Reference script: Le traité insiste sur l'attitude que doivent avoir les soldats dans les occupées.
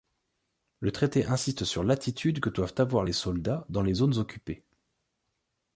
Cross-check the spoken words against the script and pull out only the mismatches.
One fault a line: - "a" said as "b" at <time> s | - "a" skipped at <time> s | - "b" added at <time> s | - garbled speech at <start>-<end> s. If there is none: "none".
- "zones" added at 3.9 s